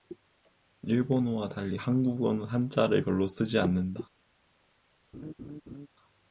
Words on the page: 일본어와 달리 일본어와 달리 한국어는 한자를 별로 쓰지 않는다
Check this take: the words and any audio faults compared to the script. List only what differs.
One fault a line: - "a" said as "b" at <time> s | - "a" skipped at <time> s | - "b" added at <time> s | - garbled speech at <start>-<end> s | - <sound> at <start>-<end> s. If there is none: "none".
- "일본어와 달리" skipped at 1.8 s
- laugh at 5.1-5.9 s